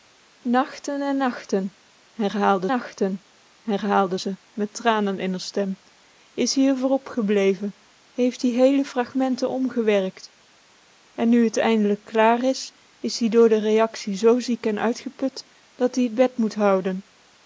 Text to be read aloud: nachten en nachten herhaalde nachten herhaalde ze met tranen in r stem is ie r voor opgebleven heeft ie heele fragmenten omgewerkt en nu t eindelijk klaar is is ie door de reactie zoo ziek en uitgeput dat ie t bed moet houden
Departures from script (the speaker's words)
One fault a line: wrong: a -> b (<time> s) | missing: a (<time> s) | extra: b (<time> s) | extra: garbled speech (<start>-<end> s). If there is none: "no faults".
no faults